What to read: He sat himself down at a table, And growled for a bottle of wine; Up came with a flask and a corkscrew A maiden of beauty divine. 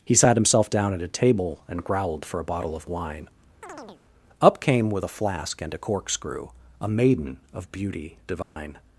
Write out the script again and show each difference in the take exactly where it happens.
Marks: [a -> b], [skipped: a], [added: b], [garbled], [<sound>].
He sat himself down at a table, And growled for a bottle of wine; [chirp] Up came with a flask and a corkscrew A maiden of beauty divine. [dropout]